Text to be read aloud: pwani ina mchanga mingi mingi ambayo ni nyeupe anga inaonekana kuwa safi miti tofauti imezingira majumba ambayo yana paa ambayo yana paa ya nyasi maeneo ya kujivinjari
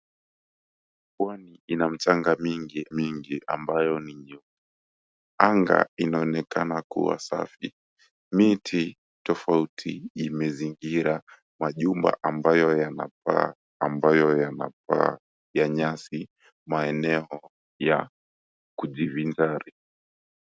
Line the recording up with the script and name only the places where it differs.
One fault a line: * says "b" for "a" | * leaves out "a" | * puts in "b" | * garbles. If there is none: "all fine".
all fine